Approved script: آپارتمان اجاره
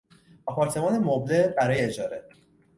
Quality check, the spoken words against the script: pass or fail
fail